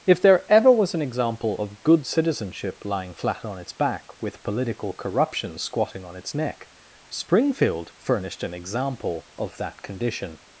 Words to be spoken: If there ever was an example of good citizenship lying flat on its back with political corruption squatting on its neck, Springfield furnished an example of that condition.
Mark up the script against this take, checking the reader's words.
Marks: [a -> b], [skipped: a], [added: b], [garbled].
If there ever was an example of good citizenship lying flat on its back with political corruption squatting on its neck, Springfield furnished an example of that condition.